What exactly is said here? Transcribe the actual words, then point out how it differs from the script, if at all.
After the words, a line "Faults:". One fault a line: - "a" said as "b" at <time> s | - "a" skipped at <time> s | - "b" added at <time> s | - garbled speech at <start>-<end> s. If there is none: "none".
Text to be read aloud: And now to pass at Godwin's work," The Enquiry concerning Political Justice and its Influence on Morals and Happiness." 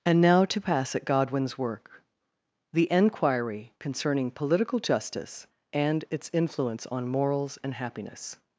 And now to pass at Godwin's work," The Enquiry concerning Political Justice and its Influence on Morals and Happiness."
Faults:
none